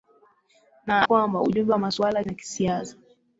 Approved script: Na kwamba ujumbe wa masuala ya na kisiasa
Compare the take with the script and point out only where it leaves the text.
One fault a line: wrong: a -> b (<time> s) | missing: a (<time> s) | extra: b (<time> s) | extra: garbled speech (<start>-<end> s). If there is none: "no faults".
no faults